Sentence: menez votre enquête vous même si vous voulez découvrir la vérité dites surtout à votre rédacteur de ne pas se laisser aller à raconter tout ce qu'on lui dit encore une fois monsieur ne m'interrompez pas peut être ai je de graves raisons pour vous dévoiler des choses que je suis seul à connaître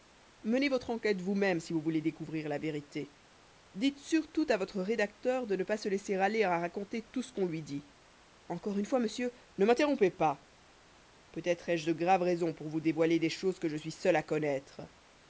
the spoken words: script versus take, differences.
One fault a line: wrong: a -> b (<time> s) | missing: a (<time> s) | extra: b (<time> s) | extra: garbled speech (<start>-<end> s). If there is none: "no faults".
no faults